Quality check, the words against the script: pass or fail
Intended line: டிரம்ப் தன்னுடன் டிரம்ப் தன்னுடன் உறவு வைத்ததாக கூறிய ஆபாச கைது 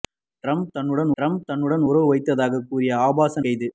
pass